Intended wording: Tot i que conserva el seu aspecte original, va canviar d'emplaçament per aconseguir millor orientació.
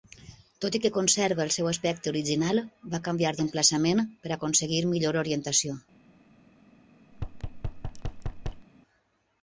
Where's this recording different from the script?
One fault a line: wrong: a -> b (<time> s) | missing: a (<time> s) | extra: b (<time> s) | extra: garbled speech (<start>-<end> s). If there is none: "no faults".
no faults